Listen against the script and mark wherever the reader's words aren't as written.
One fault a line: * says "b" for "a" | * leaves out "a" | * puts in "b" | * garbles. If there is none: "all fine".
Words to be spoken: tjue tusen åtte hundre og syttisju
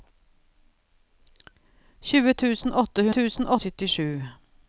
* says "tusen" for "hundre"